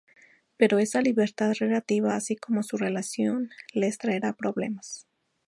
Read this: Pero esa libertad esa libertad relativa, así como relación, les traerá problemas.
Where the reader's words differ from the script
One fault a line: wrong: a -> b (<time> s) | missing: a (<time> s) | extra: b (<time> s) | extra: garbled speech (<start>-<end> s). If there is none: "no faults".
missing: esa libertad (1.5 s)
extra: su (2.6 s)